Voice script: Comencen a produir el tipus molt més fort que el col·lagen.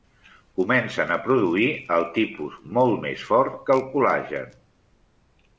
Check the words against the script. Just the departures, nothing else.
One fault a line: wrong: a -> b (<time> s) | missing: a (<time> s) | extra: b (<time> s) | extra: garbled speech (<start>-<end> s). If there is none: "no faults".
no faults